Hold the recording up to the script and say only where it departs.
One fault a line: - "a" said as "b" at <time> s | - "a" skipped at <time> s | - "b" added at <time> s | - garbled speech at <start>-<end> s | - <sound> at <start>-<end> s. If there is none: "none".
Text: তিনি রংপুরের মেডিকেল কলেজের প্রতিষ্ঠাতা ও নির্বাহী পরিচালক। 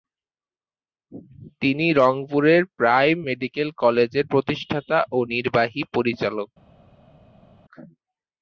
- "প্রাইম" added at 2.8 s